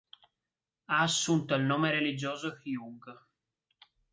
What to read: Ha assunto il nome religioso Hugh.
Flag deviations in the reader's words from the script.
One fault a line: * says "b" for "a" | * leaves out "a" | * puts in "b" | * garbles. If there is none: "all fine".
all fine